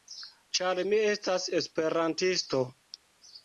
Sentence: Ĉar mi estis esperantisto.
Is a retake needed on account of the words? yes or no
yes